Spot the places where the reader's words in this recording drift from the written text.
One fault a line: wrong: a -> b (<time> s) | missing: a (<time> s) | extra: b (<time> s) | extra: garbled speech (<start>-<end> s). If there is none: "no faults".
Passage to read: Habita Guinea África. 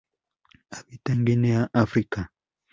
extra: en (1.1 s)